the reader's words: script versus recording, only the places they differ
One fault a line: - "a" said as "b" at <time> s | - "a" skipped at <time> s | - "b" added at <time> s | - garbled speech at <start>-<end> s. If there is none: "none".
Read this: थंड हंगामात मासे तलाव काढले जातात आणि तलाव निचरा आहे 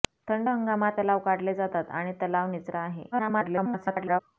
- "मासे" skipped at 1.0 s
- garbled speech at 3.1-4.2 s